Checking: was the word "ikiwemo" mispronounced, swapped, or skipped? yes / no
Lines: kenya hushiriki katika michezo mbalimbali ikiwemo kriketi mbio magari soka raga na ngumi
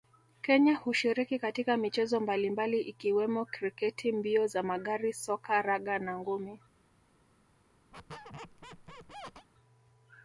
no